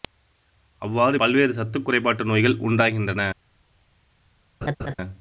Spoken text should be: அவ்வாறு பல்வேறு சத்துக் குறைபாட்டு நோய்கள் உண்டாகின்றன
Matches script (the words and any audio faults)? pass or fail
fail